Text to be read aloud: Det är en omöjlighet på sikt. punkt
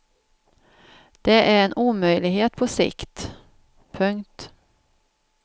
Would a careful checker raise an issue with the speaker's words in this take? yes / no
no